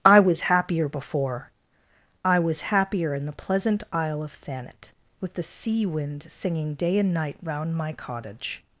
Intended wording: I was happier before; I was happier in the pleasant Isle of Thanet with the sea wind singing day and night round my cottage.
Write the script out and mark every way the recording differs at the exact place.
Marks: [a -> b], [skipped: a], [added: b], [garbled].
I was happier before; I was happier in the pleasant Isle of Thanet with the sea wind singing day and night round my cottage.